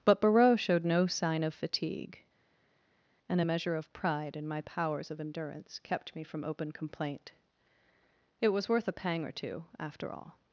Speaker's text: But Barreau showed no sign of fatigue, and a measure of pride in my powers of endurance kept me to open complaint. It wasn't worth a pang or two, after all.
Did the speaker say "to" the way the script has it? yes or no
no